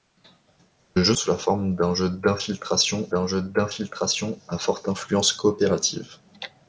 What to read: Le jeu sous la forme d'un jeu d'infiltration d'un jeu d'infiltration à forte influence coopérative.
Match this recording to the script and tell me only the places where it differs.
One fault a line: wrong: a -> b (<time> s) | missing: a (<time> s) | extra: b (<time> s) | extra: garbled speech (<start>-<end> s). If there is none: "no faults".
no faults